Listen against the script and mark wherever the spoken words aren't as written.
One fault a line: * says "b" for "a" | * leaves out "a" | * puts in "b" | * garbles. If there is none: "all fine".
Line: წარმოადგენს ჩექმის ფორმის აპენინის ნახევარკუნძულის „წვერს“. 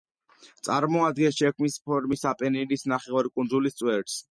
all fine